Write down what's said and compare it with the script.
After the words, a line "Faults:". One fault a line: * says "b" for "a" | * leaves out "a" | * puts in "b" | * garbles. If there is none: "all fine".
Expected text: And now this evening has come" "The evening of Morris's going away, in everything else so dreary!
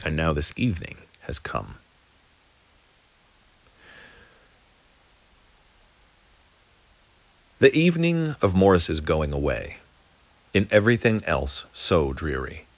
And now this evening has come" "The evening of Morris's going away, in everything else so dreary!
Faults:
all fine